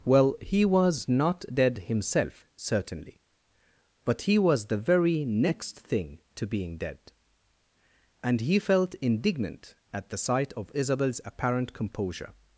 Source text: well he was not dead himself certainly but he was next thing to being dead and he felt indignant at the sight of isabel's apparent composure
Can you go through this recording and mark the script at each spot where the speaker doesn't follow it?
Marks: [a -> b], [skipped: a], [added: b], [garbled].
well he was not dead himself certainly but he was [added: the very] next thing to being dead and he felt indignant at the sight of isabel's apparent composure